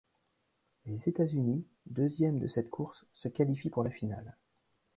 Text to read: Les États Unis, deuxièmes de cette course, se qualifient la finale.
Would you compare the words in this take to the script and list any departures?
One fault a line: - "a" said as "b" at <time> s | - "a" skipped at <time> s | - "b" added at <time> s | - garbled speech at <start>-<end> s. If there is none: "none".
- "pour" added at 3.7 s